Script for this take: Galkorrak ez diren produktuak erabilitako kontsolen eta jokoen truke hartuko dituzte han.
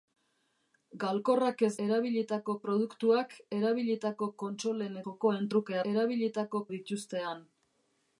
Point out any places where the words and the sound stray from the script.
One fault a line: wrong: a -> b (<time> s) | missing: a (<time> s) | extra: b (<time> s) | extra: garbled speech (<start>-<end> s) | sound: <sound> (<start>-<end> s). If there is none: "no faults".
wrong: diren -> erabilitako (1.9 s)
missing: eta (5.0 s)
wrong: hartuko -> erabilitako (5.9 s)